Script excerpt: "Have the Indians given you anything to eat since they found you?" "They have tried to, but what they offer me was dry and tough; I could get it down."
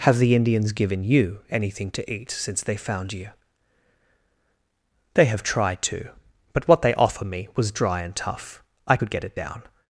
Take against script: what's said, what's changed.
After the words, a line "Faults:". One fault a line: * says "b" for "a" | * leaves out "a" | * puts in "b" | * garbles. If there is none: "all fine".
"Have the Indians given you anything to eat since they found you?" "They have tried to, but what they offer me was dry and tough; I could get it down."
Faults:
all fine